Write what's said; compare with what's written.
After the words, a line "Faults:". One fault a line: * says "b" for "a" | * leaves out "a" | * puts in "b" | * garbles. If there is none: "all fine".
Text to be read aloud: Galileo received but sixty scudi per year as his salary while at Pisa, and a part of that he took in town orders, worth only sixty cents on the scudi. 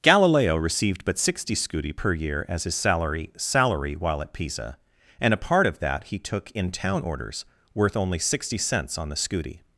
Galileo received but sixty scudi per year as his salary salary while at Pisa, and a part of that he took in town orders, worth only sixty cents on the scudi.
Faults:
* puts in "salary"